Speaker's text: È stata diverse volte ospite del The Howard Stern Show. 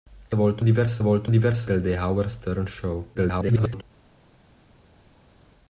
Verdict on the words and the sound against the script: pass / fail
fail